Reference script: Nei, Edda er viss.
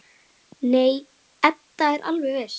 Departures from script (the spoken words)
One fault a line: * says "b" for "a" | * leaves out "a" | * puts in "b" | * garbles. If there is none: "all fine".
* puts in "alveg"